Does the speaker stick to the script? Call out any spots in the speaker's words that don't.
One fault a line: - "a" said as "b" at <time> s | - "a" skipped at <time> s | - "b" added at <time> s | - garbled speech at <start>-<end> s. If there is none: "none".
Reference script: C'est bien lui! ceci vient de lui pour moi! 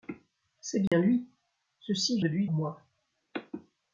- "vient" skipped at 2.2 s
- "pour" skipped at 2.5 s